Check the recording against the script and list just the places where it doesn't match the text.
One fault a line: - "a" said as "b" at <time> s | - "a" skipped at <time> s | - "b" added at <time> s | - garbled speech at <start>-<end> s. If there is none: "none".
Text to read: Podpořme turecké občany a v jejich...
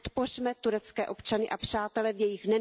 - "přátele" added at 1.6 s